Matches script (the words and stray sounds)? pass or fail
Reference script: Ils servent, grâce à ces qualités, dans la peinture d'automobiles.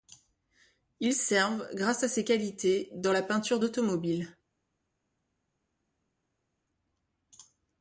pass